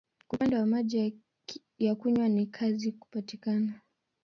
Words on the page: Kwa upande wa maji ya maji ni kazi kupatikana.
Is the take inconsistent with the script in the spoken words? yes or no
yes